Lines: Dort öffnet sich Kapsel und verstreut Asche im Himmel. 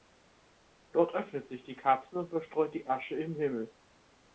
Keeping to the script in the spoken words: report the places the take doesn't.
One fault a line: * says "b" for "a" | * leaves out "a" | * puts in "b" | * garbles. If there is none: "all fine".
* puts in "die"
* puts in "die"